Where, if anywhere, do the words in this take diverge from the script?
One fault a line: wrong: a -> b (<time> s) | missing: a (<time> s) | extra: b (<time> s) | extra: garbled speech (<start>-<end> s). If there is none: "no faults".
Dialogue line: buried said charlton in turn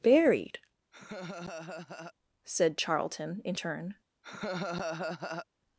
no faults